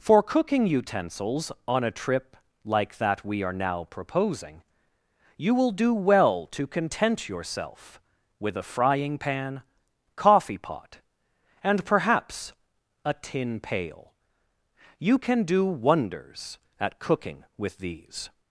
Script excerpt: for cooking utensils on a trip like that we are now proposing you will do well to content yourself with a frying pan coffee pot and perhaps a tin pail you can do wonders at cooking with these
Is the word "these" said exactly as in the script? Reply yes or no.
yes